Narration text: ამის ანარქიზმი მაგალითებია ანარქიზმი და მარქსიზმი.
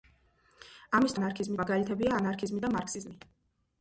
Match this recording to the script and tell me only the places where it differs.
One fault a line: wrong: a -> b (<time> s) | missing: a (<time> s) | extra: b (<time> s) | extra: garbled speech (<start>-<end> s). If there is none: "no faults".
no faults